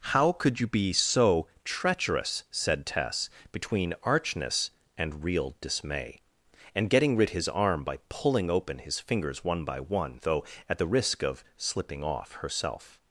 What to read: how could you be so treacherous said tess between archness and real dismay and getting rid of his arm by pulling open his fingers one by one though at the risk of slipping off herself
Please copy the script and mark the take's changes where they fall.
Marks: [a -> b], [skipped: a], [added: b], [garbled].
how could you be so treacherous said tess between archness and real dismay and getting rid [skipped: of] his arm by pulling open his fingers one by one though at the risk of slipping off herself